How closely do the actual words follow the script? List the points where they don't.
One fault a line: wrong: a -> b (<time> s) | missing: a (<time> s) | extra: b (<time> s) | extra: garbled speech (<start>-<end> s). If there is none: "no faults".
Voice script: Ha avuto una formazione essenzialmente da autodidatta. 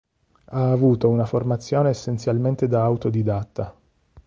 no faults